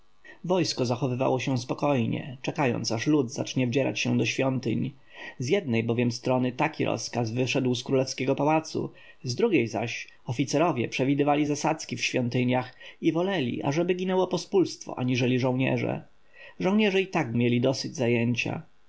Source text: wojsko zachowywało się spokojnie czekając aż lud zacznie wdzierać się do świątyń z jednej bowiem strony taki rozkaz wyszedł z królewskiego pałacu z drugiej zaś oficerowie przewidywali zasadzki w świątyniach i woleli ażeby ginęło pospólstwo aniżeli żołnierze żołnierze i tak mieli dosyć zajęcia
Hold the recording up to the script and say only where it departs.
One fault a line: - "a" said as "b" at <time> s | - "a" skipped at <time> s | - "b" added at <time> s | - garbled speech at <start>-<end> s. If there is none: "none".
none